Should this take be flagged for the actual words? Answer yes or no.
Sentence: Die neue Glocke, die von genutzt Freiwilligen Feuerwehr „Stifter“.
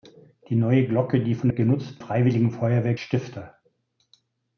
no